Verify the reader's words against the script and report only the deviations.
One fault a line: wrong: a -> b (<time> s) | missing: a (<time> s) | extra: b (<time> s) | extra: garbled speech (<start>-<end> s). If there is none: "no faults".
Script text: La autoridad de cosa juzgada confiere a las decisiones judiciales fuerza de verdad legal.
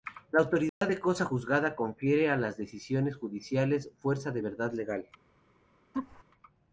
no faults